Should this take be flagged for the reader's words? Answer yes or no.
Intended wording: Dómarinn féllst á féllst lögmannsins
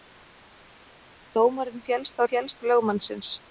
no